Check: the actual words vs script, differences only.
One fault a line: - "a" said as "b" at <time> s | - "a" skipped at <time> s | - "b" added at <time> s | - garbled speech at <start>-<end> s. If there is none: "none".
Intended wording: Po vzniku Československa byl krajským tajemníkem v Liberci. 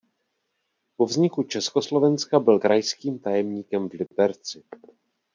none